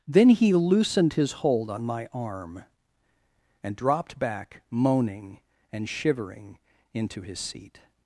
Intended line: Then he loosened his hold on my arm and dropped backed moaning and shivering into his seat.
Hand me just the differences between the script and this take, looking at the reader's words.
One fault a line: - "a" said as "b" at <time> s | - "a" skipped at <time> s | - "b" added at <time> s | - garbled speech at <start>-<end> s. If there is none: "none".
- "backed" said as "back" at 4.2 s